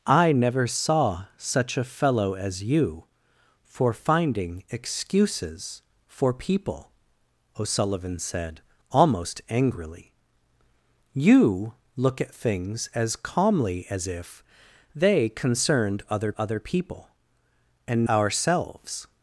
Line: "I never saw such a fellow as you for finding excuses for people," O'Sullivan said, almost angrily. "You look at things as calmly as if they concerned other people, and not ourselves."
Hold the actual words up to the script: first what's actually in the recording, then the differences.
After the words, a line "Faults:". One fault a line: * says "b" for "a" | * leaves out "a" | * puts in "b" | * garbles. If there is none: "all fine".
"I never saw such a fellow as you for finding excuses for people," O'Sullivan said, almost angrily. "You look at things as calmly as if they concerned other other people, and ourselves."
Faults:
* puts in "other"
* leaves out "not"